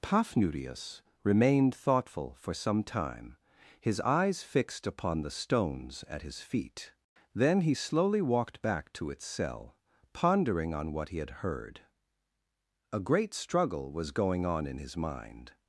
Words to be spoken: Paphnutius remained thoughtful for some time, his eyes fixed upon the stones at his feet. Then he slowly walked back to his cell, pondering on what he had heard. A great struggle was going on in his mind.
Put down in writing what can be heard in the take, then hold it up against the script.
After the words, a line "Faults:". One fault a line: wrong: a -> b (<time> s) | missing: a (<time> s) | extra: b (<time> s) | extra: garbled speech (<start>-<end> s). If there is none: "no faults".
Paphnutius remained thoughtful for some time, his eyes fixed upon the stones at his feet. Then he slowly walked back to its cell, pondering on what he had heard. A great struggle was going on in his mind.
Faults:
wrong: his -> its (9.1 s)